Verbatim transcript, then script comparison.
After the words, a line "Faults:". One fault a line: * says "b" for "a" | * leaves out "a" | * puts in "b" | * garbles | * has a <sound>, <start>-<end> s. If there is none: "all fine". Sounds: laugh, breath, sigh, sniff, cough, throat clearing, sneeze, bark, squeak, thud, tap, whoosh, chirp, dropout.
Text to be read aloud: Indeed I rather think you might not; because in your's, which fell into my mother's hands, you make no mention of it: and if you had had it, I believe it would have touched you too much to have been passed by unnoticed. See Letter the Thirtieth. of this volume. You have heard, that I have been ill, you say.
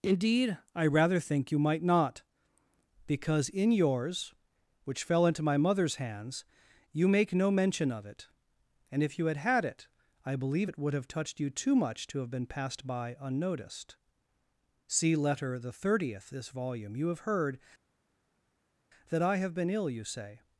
Indeed I rather think you might not; because in your's, which fell into my mother's hands, you make no mention of it: and if you had had it, I believe it would have touched you too much to have been passed by unnoticed. See Letter the Thirtieth. this volume. You have heard, that I have been ill, you say.
Faults:
* leaves out "of"